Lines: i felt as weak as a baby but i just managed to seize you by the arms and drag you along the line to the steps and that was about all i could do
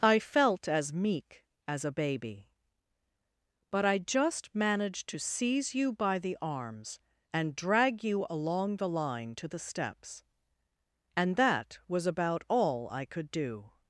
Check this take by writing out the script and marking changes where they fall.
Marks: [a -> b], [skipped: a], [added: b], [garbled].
i felt as [weak -> meek] as a baby but i just managed to seize you by the arms and drag you along the line to the steps and that was about all i could do